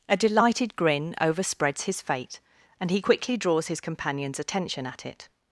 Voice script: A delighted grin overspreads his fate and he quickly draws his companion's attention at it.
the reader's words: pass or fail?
pass